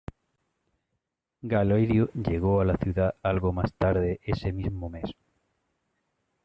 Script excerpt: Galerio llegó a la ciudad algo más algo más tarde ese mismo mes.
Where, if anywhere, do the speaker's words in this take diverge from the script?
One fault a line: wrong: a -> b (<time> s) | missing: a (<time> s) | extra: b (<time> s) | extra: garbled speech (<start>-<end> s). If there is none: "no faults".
missing: algo más (3.7 s)